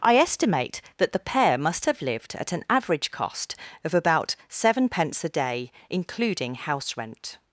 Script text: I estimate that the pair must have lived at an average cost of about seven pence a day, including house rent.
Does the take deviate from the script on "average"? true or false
false